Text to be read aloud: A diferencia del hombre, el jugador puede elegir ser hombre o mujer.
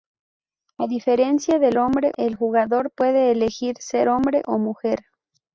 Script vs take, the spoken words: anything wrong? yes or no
no